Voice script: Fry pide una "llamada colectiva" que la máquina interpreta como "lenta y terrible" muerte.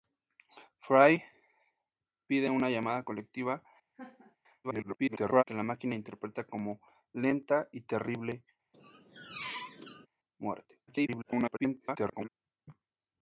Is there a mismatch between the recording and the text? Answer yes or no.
yes